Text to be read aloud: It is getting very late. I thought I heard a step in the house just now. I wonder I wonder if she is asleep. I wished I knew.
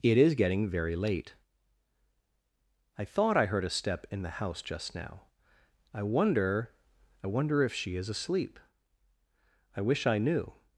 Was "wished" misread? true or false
true